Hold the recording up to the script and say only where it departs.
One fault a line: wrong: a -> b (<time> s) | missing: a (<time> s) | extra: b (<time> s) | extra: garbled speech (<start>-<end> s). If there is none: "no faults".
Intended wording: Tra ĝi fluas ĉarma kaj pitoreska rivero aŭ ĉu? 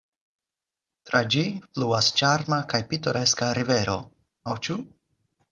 no faults